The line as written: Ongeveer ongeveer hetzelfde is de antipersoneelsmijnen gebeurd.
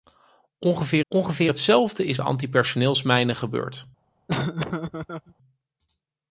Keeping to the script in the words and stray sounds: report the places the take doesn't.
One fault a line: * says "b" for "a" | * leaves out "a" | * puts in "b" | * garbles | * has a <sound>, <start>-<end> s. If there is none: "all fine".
* has a laugh, 4.3-5.3 s